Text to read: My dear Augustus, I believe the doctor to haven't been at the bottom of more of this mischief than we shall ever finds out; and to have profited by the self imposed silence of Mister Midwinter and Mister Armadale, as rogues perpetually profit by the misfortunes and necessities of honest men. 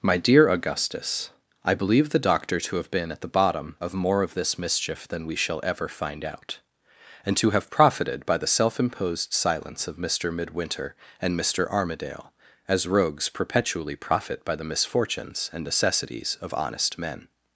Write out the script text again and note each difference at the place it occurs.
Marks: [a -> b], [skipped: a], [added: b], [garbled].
My dear Augustus, I believe the doctor to [haven't -> have] been at the bottom of more of this mischief than we shall ever [finds -> find] out; and to have profited by the self imposed silence of Mister Midwinter and Mister Armadale, as rogues perpetually profit by the misfortunes and necessities of honest men.